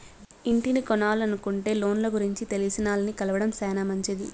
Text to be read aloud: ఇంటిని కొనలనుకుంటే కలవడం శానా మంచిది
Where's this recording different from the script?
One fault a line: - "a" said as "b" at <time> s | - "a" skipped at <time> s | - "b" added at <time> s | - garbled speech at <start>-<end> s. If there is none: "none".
- "లోన్ల గురించి తెలిసినాల్ని" added at 1.7 s